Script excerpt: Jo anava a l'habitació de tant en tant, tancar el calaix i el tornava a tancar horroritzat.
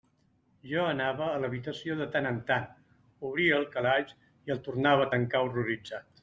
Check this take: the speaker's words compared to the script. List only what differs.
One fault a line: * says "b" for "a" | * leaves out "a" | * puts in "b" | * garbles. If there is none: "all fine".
* says "obria" for "tancar"